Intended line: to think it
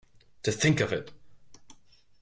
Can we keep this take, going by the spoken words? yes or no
no